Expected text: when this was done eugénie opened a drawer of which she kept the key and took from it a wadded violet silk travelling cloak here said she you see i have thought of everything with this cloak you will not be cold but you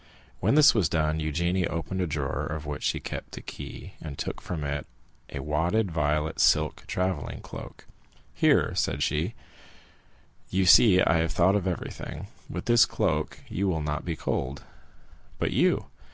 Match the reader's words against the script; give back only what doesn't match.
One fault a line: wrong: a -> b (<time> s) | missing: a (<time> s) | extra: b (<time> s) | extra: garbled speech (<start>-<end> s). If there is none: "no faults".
no faults